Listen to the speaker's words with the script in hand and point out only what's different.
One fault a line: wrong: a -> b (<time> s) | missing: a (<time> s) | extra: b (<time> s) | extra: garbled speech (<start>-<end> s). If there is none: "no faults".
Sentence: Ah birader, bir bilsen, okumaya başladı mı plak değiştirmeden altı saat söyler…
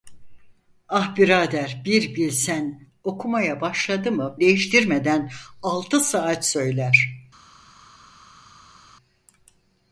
missing: plak (4.4 s)